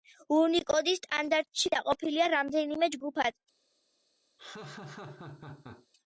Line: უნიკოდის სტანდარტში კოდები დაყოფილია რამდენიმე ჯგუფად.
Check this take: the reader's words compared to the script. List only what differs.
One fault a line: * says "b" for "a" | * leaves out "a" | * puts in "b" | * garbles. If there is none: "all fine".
* leaves out "კოდები"